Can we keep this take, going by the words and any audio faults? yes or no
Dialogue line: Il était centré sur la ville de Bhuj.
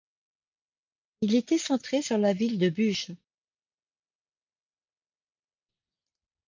yes